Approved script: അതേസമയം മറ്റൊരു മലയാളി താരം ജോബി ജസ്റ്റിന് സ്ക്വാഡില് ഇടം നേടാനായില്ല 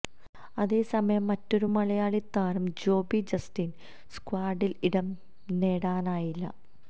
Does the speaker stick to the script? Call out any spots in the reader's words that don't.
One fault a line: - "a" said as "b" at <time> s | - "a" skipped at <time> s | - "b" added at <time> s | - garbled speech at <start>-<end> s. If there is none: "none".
none